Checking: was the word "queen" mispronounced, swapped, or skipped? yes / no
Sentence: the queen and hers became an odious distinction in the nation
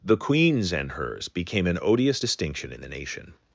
yes